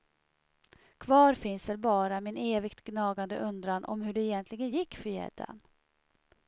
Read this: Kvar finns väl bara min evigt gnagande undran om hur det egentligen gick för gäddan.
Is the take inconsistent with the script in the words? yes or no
no